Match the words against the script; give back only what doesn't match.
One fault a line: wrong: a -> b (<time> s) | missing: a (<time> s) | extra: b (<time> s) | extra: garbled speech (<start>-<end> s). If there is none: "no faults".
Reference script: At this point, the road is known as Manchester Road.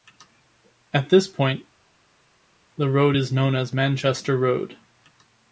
no faults